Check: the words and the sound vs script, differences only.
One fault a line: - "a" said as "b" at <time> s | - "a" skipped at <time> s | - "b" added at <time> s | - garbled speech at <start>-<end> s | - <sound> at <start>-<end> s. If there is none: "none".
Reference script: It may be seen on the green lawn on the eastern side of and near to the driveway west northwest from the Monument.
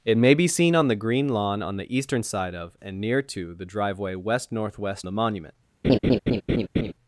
- "from" skipped at 5.1 s
- laugh at 5.8-6.9 s